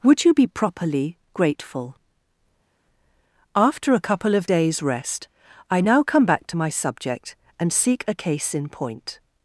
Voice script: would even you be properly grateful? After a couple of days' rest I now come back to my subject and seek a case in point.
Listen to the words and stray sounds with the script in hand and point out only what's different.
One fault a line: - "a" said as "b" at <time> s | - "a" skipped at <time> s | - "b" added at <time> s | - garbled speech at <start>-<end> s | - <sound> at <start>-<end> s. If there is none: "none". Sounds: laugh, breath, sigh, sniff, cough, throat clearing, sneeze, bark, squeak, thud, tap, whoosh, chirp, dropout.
- "even" skipped at 0.2 s